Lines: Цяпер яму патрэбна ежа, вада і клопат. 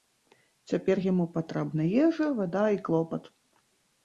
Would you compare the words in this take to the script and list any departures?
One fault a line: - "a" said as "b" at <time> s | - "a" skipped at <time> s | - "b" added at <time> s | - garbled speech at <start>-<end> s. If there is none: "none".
none